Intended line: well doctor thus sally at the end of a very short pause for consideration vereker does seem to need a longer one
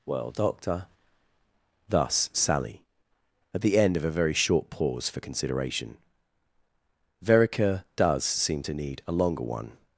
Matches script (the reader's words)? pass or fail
pass